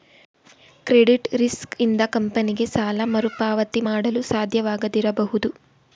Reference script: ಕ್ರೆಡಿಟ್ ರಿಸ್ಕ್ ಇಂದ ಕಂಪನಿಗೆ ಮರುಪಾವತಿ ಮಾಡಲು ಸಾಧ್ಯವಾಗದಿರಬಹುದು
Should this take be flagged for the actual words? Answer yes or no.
yes